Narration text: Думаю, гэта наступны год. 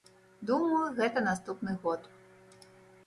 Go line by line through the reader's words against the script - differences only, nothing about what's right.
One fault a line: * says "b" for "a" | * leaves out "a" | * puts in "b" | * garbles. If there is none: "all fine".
all fine